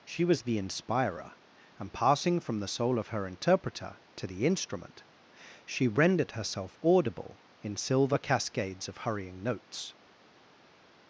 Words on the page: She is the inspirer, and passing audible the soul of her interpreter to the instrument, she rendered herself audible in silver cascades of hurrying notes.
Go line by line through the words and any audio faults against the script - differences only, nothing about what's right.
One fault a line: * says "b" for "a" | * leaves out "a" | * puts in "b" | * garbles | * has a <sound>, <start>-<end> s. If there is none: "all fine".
* says "was" for "is"
* says "from" for "audible"